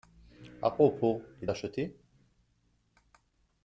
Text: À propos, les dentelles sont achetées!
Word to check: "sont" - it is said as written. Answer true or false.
false